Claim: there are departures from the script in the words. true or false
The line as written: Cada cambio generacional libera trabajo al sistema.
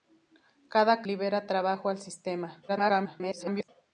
true